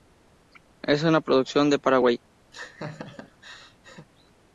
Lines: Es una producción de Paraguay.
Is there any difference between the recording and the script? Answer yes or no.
no